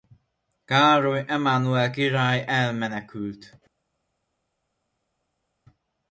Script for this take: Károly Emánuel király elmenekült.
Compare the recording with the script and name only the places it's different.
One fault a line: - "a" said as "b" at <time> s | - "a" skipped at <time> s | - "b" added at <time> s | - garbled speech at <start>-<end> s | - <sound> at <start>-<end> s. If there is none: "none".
none